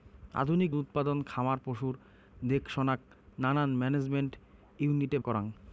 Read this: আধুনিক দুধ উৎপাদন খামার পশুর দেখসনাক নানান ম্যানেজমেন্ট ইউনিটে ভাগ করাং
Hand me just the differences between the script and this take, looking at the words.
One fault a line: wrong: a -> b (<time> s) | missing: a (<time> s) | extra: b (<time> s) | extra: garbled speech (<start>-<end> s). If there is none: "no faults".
missing: দুধ (0.7 s)
missing: ভাগ (5.2 s)